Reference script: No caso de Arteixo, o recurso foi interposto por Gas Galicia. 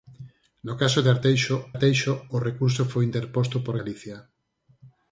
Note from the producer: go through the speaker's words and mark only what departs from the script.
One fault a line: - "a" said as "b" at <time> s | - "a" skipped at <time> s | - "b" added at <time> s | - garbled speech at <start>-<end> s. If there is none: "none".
- "Arteixo" added at 1.7 s
- "Gas" skipped at 3.7 s